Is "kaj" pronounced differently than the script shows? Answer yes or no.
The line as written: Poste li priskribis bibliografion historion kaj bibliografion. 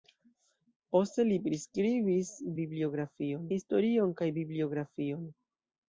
no